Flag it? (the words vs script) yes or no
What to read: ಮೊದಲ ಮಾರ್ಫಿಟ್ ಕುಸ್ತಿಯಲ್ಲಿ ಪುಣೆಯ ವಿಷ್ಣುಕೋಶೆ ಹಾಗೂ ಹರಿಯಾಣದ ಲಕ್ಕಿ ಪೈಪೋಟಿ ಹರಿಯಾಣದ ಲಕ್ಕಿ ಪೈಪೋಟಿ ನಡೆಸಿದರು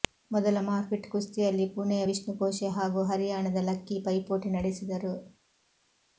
yes